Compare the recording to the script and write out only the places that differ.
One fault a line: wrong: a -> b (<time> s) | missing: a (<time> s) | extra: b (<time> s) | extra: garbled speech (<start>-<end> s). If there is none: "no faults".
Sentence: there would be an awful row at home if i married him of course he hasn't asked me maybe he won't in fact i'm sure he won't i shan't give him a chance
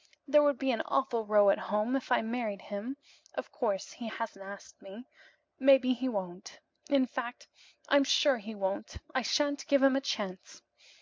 no faults